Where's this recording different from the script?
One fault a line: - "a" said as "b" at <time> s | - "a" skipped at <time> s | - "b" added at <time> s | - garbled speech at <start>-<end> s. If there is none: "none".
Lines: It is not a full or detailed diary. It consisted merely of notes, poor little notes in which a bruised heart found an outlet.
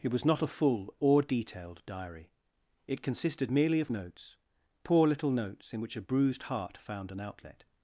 - "is" said as "was" at 0.1 s